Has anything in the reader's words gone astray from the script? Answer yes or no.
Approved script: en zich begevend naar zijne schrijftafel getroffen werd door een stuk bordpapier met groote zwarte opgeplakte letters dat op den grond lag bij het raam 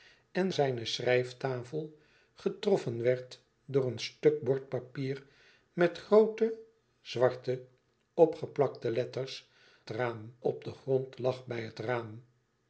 yes